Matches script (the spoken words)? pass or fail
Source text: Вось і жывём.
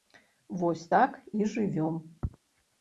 fail